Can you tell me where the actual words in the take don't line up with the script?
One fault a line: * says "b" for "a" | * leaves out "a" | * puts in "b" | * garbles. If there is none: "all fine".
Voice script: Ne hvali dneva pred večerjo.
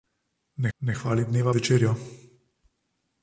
* puts in "ne"
* leaves out "pred"